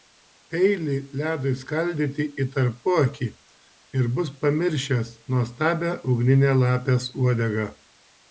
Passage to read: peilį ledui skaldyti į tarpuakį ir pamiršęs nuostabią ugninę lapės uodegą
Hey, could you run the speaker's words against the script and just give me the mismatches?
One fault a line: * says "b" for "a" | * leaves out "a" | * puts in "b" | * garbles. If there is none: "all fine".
* puts in "bus"